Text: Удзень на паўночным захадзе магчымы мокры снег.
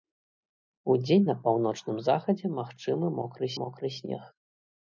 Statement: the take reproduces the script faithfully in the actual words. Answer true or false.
false